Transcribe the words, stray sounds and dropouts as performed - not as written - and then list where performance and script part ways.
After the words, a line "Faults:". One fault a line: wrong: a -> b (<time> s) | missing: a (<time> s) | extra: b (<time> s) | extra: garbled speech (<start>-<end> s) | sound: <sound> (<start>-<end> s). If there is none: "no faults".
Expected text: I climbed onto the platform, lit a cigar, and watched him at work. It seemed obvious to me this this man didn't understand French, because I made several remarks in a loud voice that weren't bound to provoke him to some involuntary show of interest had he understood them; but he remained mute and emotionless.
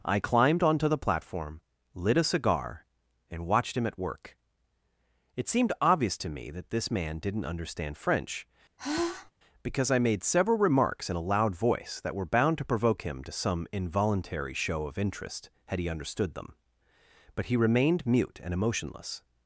I climbed onto the platform, lit a cigar, and watched him at work. It seemed obvious to me that this man didn't understand French, because I made several remarks in a loud voice that were bound to provoke him to some involuntary show of interest had he understood them; but he remained mute and emotionless.
Faults:
wrong: this -> that (6.5 s)
sound: sigh (8.8-9.3 s)
wrong: weren't -> were (12.1 s)